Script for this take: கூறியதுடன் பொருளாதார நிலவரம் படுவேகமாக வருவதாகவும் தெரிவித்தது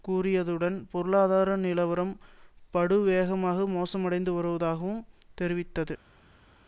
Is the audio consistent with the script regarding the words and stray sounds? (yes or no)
no